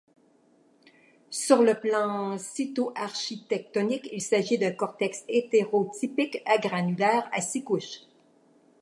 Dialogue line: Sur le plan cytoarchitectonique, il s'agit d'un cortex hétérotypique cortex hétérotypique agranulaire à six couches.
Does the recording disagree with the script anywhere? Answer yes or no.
yes